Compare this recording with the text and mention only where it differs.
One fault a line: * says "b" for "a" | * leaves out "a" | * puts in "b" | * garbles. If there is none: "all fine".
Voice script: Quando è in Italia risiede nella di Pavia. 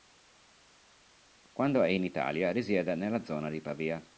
* puts in "zona"